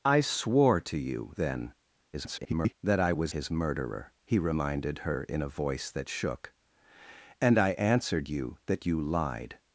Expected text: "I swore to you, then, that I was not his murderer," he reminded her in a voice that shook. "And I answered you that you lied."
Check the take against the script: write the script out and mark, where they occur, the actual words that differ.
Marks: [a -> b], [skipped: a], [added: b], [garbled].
"I swore to you, then, [garbled] that I was [skipped: not] his murderer," he reminded her in a voice that shook. "And I answered you that you lied."